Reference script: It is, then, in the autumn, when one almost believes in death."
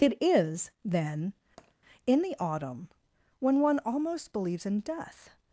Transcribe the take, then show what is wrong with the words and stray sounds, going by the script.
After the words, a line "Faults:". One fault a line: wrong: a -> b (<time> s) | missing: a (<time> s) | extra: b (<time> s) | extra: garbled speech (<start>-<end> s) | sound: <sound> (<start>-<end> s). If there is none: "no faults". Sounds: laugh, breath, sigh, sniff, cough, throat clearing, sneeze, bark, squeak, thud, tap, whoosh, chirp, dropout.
It is, then, in the autumn, when one almost believes in death."
Faults:
sound: tap (1.6-1.7 s)